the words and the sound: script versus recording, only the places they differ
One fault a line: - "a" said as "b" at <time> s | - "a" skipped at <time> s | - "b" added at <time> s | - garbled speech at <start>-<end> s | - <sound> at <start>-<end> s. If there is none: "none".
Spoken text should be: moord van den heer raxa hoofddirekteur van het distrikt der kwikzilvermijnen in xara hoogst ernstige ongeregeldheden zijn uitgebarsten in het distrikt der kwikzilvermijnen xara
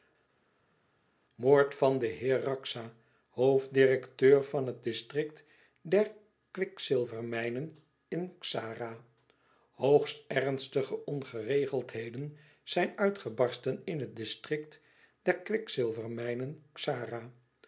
none